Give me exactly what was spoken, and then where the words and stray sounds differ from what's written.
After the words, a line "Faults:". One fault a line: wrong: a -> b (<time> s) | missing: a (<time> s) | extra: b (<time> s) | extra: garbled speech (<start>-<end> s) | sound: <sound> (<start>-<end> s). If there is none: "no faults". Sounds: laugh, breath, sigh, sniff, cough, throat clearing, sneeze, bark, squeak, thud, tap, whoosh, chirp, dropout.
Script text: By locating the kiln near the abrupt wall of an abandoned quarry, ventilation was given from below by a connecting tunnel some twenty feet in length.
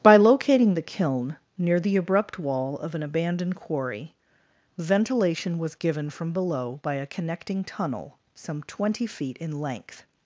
By locating the kiln near the abrupt wall of an abandoned quarry, ventilation was given from below by a connecting tunnel some twenty feet in length.
Faults:
no faults